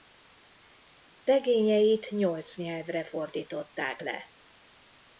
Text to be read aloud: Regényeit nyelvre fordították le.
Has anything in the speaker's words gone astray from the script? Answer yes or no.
yes